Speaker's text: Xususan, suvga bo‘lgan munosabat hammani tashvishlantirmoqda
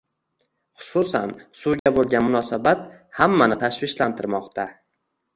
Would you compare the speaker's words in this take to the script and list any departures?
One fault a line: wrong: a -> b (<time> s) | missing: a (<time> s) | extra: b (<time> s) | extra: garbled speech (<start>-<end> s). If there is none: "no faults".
no faults